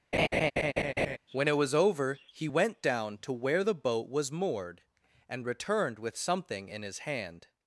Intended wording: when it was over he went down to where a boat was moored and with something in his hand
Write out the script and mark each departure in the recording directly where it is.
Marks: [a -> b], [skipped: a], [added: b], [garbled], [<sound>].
[laugh] when it was over he went down to where [a -> the] boat was moored and [added: returned] with something in his hand